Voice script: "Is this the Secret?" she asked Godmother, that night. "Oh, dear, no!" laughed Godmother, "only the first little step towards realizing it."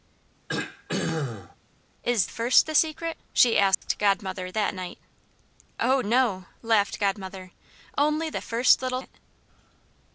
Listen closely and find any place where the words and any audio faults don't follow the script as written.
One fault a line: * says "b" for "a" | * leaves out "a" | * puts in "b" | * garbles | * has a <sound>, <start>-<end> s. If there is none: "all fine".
* has a throat clearing, 0.5-1.6 s
* says "first" for "this"
* has a dropout, 3.7-3.8 s
* leaves out "dear"
* leaves out "step towards realizing"